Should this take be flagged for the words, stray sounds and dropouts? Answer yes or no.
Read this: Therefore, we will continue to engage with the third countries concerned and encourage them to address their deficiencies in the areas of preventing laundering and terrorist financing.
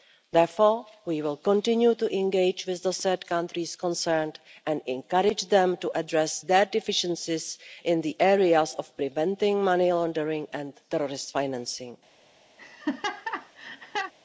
yes